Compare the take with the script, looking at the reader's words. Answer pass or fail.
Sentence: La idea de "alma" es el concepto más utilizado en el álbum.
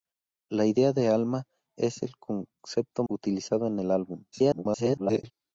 fail